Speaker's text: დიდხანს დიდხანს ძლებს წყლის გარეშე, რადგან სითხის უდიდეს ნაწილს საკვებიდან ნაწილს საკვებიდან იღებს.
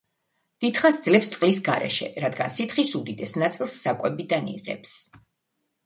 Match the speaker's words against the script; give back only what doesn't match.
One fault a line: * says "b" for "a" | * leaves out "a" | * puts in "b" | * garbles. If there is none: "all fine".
* leaves out "დიდხანს"
* leaves out "ნაწილს საკვებიდან"